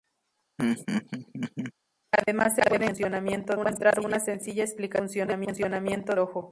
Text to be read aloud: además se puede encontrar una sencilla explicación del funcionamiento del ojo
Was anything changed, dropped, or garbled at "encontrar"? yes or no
yes